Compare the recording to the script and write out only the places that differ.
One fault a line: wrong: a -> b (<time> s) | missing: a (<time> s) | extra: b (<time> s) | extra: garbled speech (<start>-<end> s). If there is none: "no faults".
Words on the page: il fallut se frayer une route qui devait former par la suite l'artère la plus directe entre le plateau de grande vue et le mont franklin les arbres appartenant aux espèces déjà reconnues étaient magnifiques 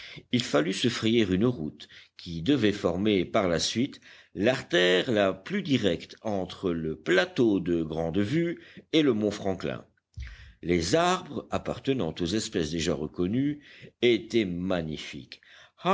no faults